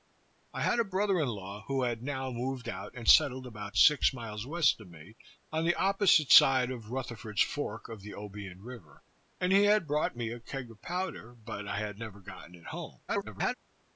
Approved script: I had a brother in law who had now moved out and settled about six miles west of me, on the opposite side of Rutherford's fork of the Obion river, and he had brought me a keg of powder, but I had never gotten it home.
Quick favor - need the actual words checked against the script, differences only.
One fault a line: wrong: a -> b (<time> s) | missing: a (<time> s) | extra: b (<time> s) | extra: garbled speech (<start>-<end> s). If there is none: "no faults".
extra: garbled speech (13.1-13.5 s)